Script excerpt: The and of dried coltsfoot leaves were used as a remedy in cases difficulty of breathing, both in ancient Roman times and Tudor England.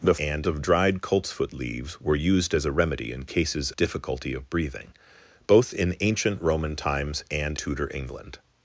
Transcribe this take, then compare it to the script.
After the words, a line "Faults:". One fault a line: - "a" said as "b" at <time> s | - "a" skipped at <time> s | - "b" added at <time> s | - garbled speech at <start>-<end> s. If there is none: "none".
The and of dried coltsfoot leaves were used as a remedy in cases difficulty of breathing, both in ancient Roman times and Tudor England.
Faults:
none